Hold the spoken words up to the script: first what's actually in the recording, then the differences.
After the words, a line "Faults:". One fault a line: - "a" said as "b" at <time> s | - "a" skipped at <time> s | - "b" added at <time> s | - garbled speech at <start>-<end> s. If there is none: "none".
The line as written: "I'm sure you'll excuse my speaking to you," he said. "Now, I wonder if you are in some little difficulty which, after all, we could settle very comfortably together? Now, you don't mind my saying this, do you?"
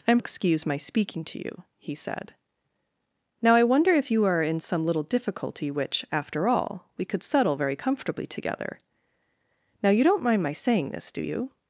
"I'm excuse my speaking to you," he said. "Now, I wonder if you are in some little difficulty which, after all, we could settle very comfortably together? Now, you don't mind my saying this, do you?"
Faults:
- "sure you'll" skipped at 0.2 s